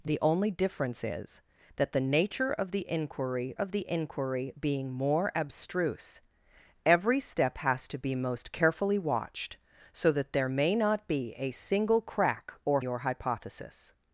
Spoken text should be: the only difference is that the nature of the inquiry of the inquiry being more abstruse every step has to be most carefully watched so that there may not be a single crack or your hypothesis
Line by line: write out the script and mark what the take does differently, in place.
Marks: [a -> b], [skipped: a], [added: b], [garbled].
the only difference is that the nature of the inquiry of the inquiry being more abstruse every step has to be most carefully watched so that there may not be a single crack or your hypothesis